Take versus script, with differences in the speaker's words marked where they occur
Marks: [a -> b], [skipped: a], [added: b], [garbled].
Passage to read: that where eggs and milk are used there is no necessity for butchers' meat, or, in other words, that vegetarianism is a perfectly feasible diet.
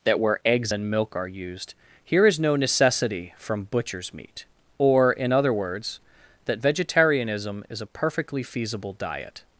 that where eggs and milk are used [there -> here] is no necessity [for -> from] butchers' meat, or, in other words, that vegetarianism is a perfectly feasible diet.